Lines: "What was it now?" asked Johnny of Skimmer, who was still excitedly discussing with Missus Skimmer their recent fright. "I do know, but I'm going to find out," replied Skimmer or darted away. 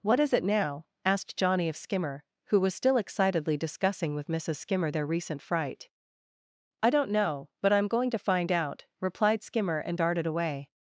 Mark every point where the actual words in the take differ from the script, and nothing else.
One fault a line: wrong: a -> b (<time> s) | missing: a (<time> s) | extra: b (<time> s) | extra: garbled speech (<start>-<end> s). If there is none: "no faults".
wrong: was -> is (0.2 s)
wrong: do -> don't (6.9 s)
wrong: or -> and (9.8 s)